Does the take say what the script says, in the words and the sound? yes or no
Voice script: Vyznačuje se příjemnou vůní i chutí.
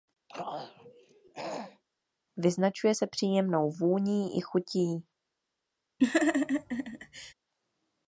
no